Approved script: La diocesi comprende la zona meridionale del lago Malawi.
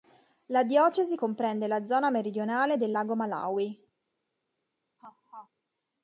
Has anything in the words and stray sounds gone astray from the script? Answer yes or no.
yes